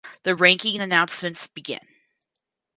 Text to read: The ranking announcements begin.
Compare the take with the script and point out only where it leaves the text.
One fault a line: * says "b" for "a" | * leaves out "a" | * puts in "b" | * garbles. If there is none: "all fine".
all fine